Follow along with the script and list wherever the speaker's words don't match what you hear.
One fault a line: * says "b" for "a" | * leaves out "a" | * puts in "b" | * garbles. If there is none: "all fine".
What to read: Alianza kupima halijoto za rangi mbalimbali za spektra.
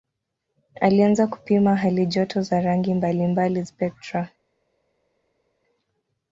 * leaves out "za"